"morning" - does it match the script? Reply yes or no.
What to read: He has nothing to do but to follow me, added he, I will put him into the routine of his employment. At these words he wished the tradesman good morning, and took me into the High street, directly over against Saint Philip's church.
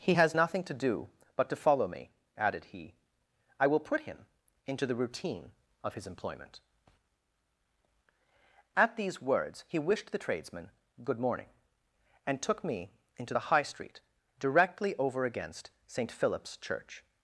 yes